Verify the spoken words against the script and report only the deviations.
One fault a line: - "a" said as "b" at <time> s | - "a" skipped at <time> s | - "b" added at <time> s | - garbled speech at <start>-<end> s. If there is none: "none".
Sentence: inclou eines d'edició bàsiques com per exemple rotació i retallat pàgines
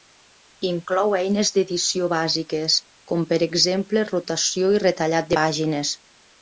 none